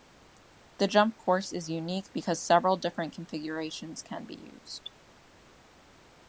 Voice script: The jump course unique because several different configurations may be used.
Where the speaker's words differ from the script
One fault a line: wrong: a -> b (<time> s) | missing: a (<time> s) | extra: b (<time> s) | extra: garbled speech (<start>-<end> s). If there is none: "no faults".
extra: is (1.5 s)
wrong: may -> can (4.0 s)